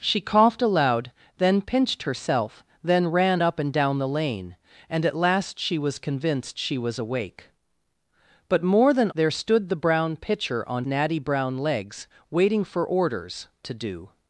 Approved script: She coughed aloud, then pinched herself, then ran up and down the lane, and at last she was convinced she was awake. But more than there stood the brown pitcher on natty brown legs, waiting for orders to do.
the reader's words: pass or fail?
pass